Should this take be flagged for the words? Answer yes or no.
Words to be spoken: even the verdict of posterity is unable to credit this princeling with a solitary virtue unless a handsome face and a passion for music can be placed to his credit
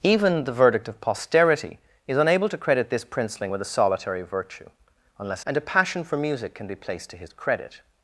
yes